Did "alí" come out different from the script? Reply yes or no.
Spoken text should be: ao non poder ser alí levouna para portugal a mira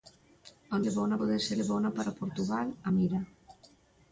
yes